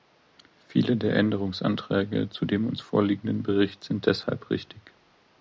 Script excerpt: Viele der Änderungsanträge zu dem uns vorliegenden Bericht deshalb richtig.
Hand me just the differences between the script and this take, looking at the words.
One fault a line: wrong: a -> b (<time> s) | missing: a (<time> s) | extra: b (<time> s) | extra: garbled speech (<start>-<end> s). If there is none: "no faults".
extra: sind (3.8 s)